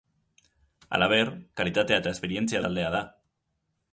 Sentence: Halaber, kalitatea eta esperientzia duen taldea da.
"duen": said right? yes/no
no